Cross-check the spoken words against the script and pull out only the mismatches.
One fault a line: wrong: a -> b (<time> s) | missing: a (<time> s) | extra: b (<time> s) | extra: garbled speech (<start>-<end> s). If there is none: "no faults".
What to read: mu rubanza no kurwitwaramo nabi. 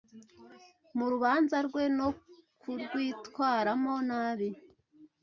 extra: rwe (1.7 s)